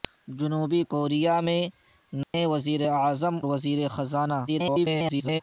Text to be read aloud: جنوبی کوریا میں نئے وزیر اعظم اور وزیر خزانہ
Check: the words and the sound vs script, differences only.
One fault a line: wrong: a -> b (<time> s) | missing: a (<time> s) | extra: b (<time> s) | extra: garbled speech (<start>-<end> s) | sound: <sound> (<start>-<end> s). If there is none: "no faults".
sound: dropout (2.2-2.3 s)
missing: اور (3.3 s)
extra: garbled speech (4.5-5.4 s)